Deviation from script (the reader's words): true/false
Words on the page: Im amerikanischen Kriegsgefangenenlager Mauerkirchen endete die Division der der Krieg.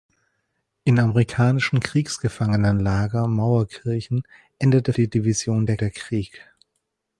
false